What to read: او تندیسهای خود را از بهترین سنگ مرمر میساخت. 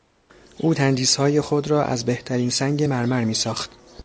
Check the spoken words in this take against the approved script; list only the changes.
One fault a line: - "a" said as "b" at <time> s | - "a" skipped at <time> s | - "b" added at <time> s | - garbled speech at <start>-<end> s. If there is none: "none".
none